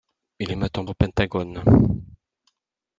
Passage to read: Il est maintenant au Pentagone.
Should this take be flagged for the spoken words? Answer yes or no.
no